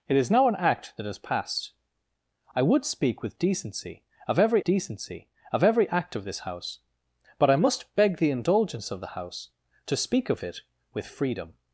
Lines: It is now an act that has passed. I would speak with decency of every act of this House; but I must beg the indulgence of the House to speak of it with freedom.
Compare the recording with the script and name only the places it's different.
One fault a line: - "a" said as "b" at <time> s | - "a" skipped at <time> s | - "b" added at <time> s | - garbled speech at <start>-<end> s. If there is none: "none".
- "decency of every" added at 4.6 s